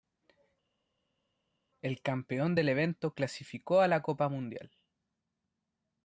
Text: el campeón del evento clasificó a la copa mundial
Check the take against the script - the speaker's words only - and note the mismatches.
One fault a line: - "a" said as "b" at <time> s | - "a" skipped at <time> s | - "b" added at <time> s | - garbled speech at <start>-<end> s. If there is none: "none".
none